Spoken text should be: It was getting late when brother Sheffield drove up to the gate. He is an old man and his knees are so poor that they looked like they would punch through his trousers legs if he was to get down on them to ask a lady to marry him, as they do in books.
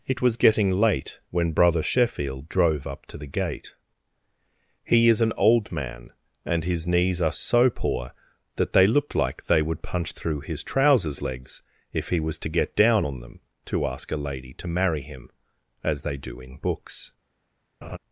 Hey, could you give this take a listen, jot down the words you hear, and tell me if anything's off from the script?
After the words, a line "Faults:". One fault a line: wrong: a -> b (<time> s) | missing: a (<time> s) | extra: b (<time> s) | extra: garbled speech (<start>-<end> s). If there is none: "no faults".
It was getting late when brother Sheffield drove up to the gate. He is an old man and his knees are so poor that they looked like they would punch through his trousers legs if he was to get down on them to ask a lady to marry him, as they do in books.
Faults:
no faults